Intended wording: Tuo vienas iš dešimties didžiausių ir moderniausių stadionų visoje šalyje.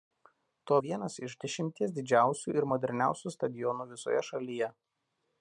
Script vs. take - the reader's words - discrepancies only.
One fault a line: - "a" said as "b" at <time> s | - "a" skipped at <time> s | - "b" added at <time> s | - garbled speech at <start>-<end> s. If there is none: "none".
none